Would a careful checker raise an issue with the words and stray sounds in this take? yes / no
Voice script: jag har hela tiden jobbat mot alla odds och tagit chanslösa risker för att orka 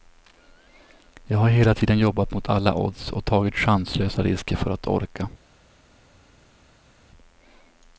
no